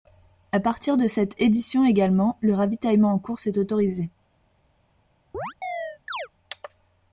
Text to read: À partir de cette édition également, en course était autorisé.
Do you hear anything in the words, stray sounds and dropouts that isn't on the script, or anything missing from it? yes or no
yes